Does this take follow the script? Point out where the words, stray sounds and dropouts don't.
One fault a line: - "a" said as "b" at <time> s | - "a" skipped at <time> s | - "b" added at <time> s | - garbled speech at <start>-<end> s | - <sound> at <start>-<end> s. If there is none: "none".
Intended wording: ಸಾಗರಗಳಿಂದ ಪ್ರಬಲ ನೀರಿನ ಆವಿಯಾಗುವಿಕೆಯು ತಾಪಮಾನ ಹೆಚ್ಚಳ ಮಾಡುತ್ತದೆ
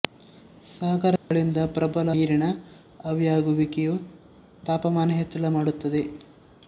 - dropout at 1.2-1.3 s